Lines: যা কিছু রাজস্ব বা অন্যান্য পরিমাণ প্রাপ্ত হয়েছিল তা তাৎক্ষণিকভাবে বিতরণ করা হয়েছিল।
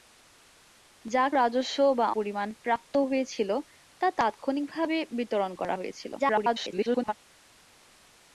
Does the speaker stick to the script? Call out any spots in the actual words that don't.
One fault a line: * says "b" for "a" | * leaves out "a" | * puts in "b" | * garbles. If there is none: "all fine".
* leaves out "কিছু"
* leaves out "অন্যান্য"
* garbles